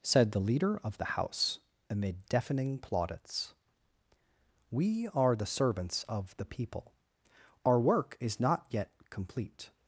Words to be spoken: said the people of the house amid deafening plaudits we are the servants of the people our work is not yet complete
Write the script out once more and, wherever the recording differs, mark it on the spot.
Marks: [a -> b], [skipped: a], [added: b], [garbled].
said the [people -> leader] of the house amid deafening plaudits we are the servants of the people our work is not yet complete